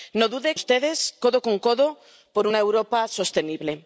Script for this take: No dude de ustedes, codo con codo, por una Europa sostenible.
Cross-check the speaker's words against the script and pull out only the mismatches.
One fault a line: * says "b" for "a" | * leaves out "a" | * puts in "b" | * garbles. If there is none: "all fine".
all fine